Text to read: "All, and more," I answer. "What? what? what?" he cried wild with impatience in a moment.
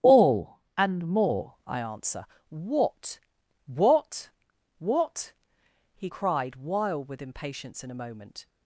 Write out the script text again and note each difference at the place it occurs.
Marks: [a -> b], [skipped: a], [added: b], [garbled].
"All, and more," I answer. "What? what? what?" he cried wild with impatience in a moment.